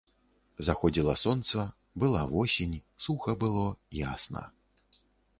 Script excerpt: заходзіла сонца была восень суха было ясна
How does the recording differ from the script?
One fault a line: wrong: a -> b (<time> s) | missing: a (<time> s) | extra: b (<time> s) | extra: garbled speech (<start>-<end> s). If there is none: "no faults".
no faults